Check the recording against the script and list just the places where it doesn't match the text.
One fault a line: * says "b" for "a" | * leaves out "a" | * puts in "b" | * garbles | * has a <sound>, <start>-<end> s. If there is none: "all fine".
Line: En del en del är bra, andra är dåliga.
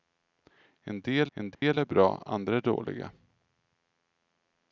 * has a dropout, 1.5-1.6 s